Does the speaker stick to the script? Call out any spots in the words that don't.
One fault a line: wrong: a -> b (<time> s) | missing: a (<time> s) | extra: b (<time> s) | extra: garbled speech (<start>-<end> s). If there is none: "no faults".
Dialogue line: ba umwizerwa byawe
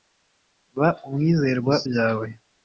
no faults